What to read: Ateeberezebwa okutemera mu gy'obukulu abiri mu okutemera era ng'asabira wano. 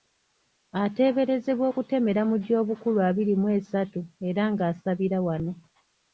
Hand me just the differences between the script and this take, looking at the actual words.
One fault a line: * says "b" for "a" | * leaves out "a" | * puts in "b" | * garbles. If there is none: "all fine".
* says "esatu" for "okutemera"